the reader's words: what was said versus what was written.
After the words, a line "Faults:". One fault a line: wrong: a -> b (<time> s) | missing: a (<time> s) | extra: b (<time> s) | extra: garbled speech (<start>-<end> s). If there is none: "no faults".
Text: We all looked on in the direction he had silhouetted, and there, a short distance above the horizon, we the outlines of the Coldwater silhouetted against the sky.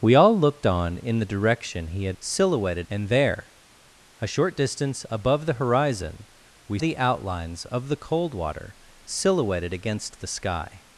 We all looked on in the direction he had silhouetted, and there, a short distance above the horizon, we the outlines of the Coldwater silhouetted against the sky.
Faults:
no faults